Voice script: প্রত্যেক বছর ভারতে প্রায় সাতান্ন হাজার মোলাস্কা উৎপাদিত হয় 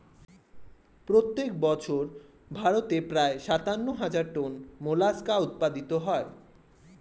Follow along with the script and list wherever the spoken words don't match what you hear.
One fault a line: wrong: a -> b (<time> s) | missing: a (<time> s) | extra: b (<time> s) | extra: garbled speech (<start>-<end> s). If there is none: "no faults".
extra: টন (4.3 s)